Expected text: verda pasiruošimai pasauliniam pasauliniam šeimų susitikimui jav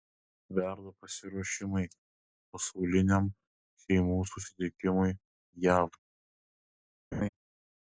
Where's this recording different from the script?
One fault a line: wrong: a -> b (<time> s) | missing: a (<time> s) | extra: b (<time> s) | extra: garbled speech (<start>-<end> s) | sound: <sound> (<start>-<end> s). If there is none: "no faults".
missing: pasauliniam (3.3 s)
sound: laugh (7.1-7.3 s)